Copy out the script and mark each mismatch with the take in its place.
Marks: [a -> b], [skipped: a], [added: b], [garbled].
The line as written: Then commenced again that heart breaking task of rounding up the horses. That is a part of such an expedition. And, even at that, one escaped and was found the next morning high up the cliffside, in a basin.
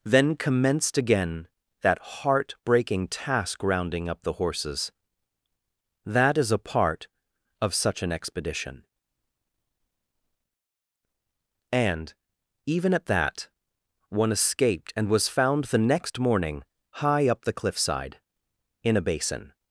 Then commenced again that heart breaking task [skipped: of] rounding up the horses. That is a part of such an expedition. And, even at that, one escaped and was found the next morning high up the cliffside, in a basin.